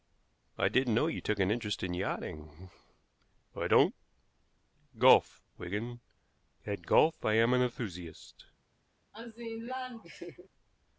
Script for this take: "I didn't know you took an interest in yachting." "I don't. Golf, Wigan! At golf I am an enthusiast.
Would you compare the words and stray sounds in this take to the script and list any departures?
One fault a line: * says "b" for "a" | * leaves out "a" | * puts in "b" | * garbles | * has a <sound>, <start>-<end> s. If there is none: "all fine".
* has a laugh, 9.1-10.5 s